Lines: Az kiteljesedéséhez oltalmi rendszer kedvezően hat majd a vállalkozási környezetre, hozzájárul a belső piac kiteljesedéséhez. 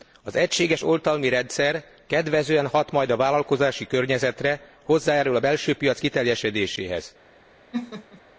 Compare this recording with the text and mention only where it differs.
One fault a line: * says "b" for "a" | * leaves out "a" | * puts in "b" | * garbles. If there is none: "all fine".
* says "egységes" for "kiteljesedéséhez"